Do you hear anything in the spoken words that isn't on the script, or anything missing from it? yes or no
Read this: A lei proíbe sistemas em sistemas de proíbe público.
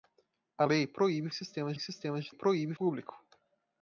no